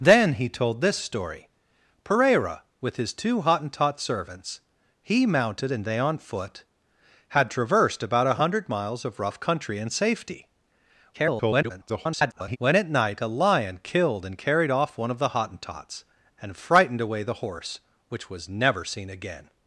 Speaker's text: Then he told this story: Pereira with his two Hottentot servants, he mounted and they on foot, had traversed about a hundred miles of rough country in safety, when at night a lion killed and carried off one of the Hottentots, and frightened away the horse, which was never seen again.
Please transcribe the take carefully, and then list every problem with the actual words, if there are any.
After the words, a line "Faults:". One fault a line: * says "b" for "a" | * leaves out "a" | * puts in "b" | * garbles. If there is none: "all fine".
Then he told this story: Pereira with his two Hottentot servants, he mounted and they on foot, had traversed about a hundred miles of rough country in safety, [garbled] when at night a lion killed and carried off one of the Hottentots, and frightened away the horse, which was never seen again.
Faults:
* garbles